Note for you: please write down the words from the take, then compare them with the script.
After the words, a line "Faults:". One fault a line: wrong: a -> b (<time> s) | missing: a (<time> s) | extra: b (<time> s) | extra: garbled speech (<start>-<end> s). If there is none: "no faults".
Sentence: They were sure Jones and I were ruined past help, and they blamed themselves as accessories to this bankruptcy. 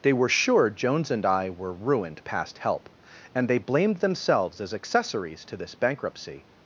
They were sure Jones and I were ruined past help, and they blamed themselves as accessories to this bankruptcy.
Faults:
no faults